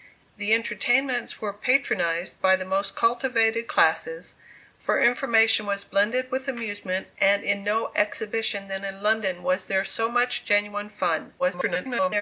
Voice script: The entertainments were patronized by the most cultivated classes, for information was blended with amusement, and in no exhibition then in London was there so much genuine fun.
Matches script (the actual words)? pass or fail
fail